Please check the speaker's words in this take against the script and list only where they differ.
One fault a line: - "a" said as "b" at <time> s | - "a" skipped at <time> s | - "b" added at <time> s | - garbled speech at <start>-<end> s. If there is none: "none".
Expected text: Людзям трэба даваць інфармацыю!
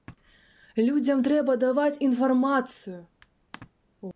none